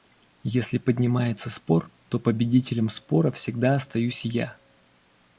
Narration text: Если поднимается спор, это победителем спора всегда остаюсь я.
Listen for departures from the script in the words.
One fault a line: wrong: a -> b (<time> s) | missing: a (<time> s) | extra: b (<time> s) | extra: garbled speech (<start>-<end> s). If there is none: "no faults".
wrong: это -> то (2.1 s)